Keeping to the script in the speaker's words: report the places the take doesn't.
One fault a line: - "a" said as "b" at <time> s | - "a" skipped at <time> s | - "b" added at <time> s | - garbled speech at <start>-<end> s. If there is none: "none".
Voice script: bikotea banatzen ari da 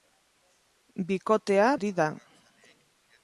- "banatzen" skipped at 1.7 s